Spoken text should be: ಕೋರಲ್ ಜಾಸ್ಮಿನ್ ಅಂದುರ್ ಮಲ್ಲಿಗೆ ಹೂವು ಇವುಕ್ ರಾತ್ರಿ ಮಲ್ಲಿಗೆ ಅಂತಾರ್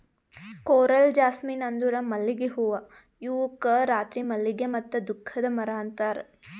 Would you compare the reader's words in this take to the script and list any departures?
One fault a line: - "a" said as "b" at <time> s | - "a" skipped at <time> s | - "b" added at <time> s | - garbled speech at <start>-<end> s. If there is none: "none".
- "ಮತ್ತ ದುಃಖದ ಮರ" added at 4.7 s